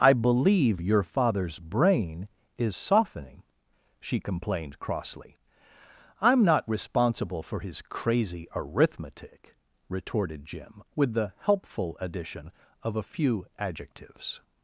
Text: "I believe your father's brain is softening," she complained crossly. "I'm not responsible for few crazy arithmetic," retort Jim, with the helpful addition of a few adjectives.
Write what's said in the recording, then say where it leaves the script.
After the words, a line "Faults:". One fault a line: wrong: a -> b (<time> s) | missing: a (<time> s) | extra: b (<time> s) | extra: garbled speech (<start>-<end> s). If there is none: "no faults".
"I believe your father's brain is softening," she complained crossly. "I'm not responsible for his crazy arithmetic," retorted Jim, with the helpful addition of a few adjectives.
Faults:
wrong: few -> his (7.6 s)
wrong: retort -> retorted (9.9 s)